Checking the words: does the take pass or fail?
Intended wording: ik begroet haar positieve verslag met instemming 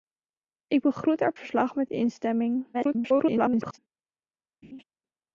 fail